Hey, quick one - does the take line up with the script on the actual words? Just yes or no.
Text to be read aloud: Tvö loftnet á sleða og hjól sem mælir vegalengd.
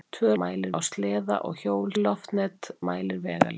no